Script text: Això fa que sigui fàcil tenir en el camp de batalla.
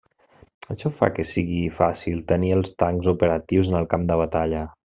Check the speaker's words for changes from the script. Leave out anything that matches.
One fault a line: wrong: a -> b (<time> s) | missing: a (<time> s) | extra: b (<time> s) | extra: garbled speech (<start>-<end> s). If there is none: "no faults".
extra: els tancs operatius (2.6 s)